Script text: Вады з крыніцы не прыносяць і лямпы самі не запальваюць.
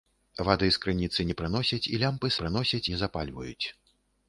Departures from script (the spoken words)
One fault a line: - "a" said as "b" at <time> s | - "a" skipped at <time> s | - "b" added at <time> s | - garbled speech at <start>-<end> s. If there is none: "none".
- "самі" said as "прыносяць" at 2.4 s